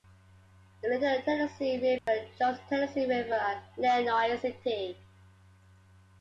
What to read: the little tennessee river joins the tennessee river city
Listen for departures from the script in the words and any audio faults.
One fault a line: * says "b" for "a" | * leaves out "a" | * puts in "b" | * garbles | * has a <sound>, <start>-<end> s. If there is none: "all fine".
* has a dropout, 2.0-2.1 s
* puts in "at lenoir"